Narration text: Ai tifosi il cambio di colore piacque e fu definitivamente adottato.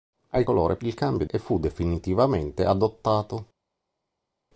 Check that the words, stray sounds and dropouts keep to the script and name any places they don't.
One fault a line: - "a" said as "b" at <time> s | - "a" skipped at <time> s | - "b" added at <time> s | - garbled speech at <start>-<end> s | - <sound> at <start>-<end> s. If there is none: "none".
- "tifosi" said as "colore" at 0.4 s
- "di colore piacque" skipped at 1.2 s